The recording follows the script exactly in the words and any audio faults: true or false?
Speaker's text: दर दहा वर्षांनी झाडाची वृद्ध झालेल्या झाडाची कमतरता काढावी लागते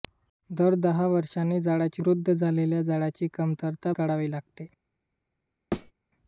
false